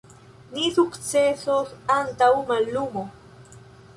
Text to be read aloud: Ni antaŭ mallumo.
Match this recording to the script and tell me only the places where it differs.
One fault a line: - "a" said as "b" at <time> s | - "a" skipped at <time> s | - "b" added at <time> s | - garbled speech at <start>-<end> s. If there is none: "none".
- "sukcesos" added at 0.7 s